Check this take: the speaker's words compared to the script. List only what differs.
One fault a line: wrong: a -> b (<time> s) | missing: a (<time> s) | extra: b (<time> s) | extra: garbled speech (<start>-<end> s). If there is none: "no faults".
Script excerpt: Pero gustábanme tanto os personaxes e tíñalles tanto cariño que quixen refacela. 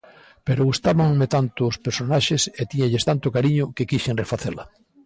no faults